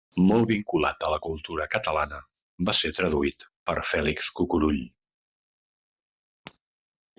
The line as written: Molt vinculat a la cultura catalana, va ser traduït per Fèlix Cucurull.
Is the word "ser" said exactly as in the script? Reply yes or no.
yes